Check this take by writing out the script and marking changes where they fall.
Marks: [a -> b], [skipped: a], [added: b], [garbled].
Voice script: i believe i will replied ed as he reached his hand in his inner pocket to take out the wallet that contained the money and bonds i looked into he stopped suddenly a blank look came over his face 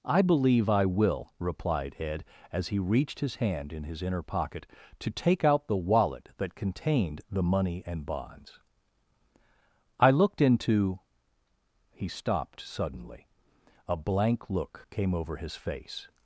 i believe i will replied ed as he reached his hand in his inner pocket to take out the wallet that contained the money and bonds i looked into he stopped suddenly a blank look came over his face